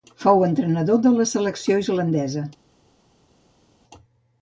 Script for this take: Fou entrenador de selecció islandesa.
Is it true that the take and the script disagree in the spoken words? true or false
true